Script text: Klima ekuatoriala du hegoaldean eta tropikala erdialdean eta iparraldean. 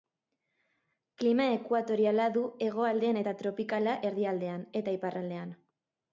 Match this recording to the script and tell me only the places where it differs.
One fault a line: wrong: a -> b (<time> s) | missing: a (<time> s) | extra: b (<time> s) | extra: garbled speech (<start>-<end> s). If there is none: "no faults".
no faults